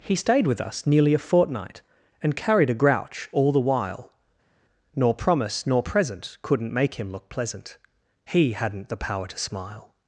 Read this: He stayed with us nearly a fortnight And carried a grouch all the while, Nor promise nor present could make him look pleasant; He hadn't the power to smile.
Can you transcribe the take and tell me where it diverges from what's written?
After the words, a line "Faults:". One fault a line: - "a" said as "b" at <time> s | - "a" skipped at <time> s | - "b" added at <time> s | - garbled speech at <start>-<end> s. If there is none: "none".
He stayed with us nearly a fortnight And carried a grouch all the while, Nor promise nor present couldn't make him look pleasant; He hadn't the power to smile.
Faults:
- "could" said as "couldn't" at 6.4 s